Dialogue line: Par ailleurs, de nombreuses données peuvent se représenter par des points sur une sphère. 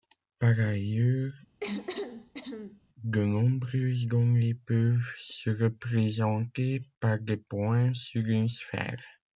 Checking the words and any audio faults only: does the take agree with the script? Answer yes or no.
no